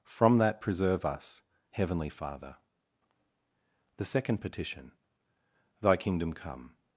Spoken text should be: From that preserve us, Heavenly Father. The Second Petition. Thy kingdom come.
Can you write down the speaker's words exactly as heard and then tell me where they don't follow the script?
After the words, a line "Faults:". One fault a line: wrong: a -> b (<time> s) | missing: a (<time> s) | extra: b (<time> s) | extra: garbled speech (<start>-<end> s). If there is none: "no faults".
From that preserve us, Heavenly Father. The Second Petition. Thy kingdom come.
Faults:
no faults